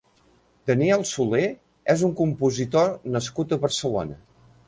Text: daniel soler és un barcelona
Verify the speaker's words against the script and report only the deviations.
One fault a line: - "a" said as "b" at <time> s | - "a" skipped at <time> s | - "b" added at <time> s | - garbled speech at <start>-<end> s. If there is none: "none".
- "compositor nascut a" added at 2.2 s